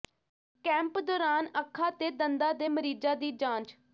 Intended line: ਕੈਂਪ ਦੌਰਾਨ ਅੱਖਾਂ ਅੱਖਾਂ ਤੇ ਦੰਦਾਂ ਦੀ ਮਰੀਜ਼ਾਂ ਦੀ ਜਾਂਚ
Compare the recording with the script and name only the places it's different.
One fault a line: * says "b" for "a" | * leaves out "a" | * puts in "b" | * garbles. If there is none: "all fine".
* leaves out "ਅੱਖਾਂ"
* says "ਦੇ" for "ਦੀ"